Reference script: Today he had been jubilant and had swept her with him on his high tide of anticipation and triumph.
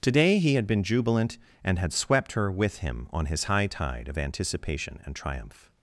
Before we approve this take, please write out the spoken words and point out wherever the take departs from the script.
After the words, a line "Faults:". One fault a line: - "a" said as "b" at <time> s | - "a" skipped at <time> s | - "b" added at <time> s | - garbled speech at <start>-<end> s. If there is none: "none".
Today he had been jubilant and had swept her with him on his high tide of anticipation and triumph.
Faults:
none